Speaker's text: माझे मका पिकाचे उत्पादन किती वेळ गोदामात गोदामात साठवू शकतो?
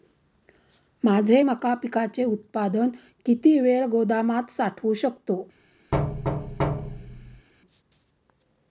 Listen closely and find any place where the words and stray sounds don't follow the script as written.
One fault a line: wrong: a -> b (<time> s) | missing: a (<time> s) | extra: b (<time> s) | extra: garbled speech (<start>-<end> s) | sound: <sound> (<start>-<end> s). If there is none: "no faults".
missing: गोदामात (4.5 s)
sound: thud (5.9-7.5 s)